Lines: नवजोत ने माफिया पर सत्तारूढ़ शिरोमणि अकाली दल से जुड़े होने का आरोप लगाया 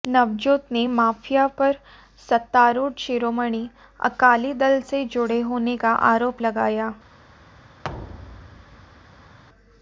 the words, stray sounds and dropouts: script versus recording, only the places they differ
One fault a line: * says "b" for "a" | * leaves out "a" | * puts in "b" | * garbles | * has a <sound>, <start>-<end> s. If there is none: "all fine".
* has a thud, 7.8-9.4 s